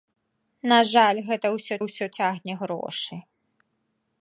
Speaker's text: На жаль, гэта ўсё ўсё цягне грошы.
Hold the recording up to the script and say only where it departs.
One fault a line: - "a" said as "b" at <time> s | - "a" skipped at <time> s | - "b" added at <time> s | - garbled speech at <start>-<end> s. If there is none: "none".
none